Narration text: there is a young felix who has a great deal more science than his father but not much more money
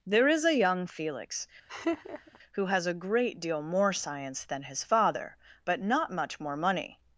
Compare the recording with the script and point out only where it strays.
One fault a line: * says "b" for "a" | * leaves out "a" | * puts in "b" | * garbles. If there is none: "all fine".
all fine